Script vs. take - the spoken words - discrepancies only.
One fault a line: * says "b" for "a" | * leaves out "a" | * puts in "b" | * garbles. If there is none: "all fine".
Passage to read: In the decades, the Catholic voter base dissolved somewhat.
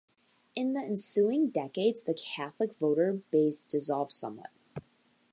* puts in "ensuing"